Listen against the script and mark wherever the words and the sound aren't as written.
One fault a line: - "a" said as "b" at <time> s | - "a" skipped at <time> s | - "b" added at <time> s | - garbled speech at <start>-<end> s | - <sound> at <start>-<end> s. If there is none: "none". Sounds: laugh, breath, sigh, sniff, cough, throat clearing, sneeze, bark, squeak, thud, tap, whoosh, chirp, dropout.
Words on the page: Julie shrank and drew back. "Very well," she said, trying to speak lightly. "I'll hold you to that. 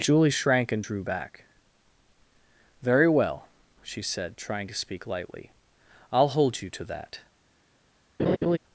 - laugh at 8.2-8.6 s